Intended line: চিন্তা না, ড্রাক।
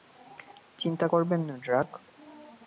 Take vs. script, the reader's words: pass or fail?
fail